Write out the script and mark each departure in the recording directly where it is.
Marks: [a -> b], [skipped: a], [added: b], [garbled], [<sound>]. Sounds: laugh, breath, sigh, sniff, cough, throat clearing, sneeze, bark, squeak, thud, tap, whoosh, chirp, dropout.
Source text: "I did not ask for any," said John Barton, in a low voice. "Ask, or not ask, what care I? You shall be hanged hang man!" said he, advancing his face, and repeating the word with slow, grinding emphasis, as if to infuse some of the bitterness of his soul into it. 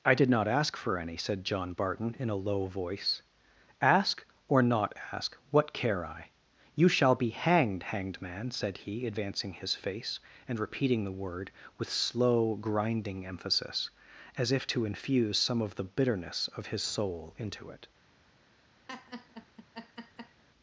"I did not ask for any," said John Barton, in a low voice. "Ask, or not ask, what care I? You shall be hanged [hang -> hanged] man!" said he, advancing his face, and repeating the word with slow, grinding emphasis, as if to infuse some of the bitterness of his soul into it. [laugh]